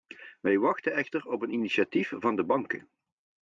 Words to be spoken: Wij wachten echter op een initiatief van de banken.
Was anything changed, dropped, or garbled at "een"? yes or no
no